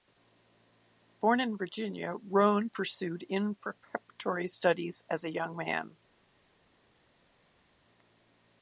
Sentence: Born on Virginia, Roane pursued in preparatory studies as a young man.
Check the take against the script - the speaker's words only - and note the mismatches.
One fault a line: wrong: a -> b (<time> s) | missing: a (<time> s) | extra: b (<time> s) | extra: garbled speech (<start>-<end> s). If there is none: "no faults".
wrong: on -> in (1.4 s)